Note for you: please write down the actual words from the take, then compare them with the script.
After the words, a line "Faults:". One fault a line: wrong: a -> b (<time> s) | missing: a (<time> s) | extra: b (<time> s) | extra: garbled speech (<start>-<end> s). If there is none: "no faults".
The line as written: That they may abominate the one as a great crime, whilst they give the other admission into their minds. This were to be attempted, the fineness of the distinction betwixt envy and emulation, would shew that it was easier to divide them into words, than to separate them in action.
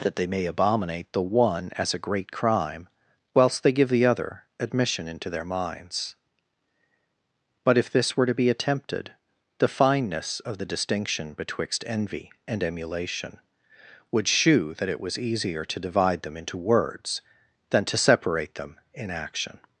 That they may abominate the one as a great crime, whilst they give the other admission into their minds. But if this were to be attempted, the fineness of the distinction betwixt envy and emulation, would shew that it was easier to divide them into words, than to separate them in action.
Faults:
extra: But if (7.6 s)